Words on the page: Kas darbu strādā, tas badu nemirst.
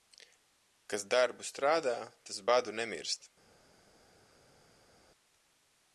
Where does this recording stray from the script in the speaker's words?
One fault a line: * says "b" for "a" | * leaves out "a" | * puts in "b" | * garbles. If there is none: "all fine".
all fine